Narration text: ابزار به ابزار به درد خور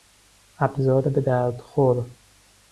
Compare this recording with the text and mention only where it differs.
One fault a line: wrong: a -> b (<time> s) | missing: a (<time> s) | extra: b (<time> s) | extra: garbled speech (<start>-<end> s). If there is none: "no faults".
missing: ابزار به (1.2 s)